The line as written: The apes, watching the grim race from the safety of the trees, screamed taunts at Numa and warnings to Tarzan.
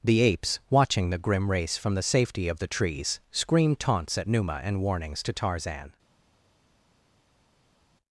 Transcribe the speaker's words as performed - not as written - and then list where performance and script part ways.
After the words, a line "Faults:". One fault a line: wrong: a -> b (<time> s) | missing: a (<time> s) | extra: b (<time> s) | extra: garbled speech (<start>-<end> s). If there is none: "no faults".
The apes, watching the grim race from the safety of the trees, screamed taunts at Numa and warnings to Tarzan.
Faults:
no faults